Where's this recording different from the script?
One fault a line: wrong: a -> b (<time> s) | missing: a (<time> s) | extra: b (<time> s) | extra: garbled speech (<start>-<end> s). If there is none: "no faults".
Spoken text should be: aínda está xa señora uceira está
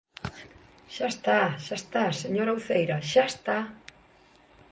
wrong: aínda -> xa (0.9 s)
extra: está (1.8 s)
extra: xa (3.1 s)